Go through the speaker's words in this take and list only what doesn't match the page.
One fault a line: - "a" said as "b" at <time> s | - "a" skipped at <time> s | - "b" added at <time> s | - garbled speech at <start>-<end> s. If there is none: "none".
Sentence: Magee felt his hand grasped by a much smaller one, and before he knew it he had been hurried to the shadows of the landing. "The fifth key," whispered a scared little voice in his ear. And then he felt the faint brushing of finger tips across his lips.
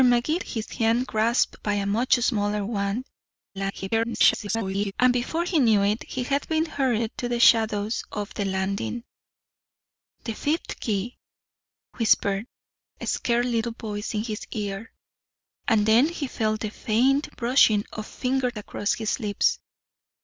- "felt" skipped at 0.4 s
- garbled speech at 3.5-4.9 s
- "tips" skipped at 18.5 s